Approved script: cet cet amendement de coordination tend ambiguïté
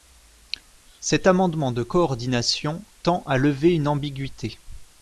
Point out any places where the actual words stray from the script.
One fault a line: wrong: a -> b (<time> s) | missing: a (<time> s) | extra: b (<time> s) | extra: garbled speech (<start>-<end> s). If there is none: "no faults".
missing: cet (1.3 s)
extra: à lever une (3.3 s)